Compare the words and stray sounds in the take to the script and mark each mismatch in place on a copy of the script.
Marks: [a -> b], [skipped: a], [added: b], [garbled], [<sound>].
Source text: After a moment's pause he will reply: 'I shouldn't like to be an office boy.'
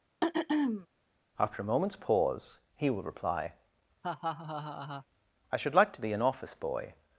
[throat clearing] After a moment's pause he will reply: [laugh] 'I [shouldn't -> should] like to be an office boy.'